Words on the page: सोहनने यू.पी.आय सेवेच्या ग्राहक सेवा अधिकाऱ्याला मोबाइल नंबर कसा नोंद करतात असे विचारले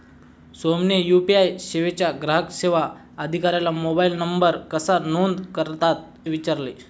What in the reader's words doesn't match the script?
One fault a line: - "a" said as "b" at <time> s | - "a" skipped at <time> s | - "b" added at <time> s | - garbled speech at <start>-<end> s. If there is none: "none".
- "असे" skipped at 6.3 s